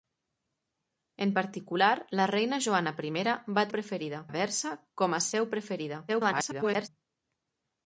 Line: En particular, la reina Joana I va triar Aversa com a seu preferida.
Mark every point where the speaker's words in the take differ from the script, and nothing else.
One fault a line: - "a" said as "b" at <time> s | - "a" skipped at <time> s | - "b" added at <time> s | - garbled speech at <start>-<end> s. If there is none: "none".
- "triar" said as "preferida" at 3.8 s
- garbled speech at 6.1-6.9 s